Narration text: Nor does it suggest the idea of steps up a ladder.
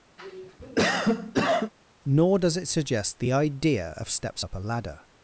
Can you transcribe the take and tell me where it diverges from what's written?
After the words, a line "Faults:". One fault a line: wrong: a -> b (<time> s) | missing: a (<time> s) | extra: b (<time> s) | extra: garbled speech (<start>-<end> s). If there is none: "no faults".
Nor does it suggest the idea of steps up a ladder.
Faults:
no faults